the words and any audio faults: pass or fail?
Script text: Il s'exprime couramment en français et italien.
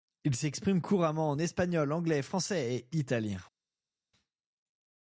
fail